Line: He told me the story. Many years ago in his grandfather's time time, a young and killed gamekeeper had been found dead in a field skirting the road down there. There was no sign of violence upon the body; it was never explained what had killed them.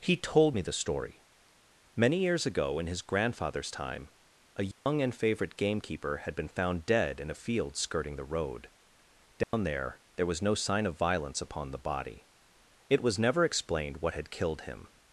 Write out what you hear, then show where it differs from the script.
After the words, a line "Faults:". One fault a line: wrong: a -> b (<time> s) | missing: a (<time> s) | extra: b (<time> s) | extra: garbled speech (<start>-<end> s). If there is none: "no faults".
He told me the story. Many years ago in his grandfather's time, a young and favourite gamekeeper had been found dead in a field skirting the road down there. There was no sign of violence upon the body; it was never explained what had killed him.
Faults:
missing: time (4.1 s)
wrong: killed -> favourite (5.1 s)
wrong: them -> him (14.6 s)